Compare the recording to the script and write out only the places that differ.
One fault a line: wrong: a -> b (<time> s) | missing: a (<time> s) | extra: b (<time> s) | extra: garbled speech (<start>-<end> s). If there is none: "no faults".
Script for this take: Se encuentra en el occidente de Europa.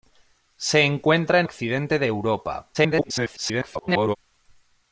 missing: el (1.5 s)
extra: garbled speech (2.7-4.2 s)